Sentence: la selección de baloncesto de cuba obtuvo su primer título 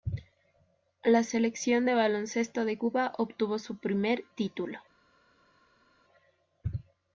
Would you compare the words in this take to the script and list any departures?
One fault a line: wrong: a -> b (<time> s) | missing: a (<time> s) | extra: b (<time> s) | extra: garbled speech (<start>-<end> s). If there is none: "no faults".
no faults